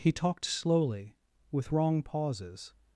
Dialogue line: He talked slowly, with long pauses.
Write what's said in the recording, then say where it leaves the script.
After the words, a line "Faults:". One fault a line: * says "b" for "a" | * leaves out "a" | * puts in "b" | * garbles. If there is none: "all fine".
He talked slowly, with wrong pauses.
Faults:
* says "wrong" for "long"